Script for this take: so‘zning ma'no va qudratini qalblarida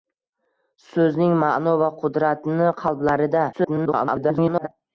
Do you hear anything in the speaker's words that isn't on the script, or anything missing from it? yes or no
yes